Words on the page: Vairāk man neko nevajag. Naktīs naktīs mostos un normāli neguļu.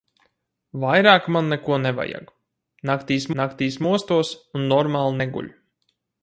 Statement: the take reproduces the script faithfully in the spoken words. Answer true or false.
true